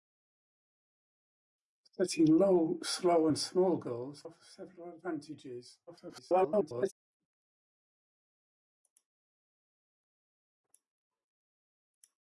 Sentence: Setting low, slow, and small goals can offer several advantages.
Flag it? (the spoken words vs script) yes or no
yes